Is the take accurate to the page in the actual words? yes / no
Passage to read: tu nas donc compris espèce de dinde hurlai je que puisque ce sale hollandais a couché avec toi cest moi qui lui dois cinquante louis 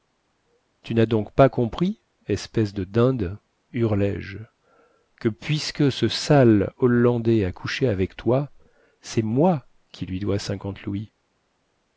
no